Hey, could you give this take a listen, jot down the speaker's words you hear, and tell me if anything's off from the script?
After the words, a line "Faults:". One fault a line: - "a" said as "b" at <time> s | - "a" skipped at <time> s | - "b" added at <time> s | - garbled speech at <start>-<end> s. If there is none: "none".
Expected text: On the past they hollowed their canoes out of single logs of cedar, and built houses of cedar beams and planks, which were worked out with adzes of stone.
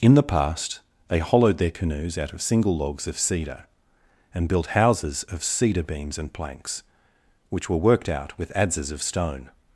In the past they hollowed their canoes out of single logs of cedar, and built houses of cedar beams and planks, which were worked out with adzes of stone.
Faults:
- "On" said as "In" at 0.0 s